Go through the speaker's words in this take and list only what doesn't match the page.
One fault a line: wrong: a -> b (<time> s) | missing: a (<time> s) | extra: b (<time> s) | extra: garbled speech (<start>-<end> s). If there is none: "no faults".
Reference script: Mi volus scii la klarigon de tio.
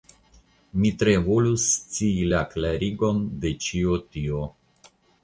extra: tre (1.0 s)
extra: ĉio (3.7 s)